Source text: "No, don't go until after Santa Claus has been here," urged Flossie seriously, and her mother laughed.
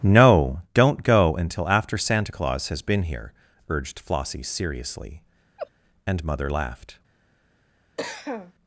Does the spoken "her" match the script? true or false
false